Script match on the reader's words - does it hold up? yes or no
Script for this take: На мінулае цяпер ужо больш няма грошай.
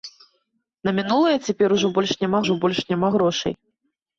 no